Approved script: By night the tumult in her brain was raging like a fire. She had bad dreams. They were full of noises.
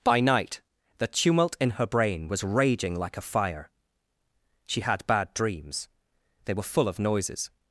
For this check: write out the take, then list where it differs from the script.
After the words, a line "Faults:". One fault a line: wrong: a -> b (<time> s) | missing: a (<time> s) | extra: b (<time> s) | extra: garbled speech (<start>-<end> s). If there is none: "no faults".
By night the tumult in her brain was raging like a fire. She had bad dreams. They were full of noises.
Faults:
no faults